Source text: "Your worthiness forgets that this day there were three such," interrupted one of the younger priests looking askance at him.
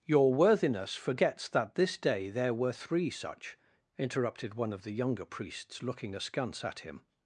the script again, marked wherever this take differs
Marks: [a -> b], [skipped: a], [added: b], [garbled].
"Your worthiness forgets that this day there were three such," interrupted one of the younger priests looking askance at him.